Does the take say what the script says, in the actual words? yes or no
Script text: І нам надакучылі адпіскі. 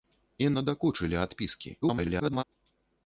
no